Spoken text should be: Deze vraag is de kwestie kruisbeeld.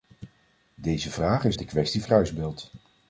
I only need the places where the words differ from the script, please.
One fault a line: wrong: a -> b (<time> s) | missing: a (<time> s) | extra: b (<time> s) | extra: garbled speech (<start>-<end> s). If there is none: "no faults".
no faults